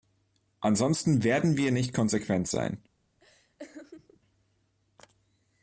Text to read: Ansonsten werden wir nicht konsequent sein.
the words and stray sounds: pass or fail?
fail